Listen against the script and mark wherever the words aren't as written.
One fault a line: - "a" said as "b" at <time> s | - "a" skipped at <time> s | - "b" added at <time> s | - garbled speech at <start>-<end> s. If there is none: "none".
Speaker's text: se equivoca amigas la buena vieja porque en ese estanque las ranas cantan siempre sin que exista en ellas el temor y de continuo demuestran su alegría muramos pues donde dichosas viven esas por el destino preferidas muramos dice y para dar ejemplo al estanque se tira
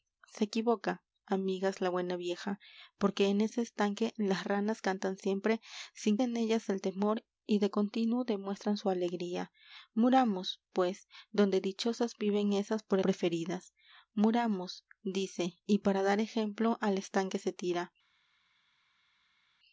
- "que exista" skipped at 6.2 s
- "el destino" skipped at 13.0 s